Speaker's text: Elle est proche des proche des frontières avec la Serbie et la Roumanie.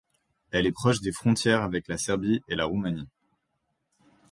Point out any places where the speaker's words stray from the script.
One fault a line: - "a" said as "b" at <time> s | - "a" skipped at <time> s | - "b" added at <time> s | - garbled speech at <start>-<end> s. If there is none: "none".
- "proche des" skipped at 1.1 s